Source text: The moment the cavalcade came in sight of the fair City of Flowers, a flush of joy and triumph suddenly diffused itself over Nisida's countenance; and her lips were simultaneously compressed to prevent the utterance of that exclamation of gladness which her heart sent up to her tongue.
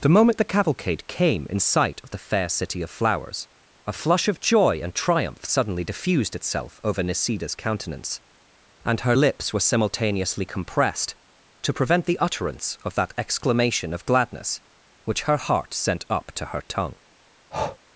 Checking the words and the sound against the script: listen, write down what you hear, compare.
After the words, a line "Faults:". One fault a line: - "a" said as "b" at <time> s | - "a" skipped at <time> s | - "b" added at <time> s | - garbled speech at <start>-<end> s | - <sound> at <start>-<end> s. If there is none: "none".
The moment the cavalcade came in sight of the fair City of Flowers, a flush of joy and triumph suddenly diffused itself over Nisida's countenance; and her lips were simultaneously compressed to prevent the utterance of that exclamation of gladness which her heart sent up to her tongue.
Faults:
- breath at 17.5-17.8 s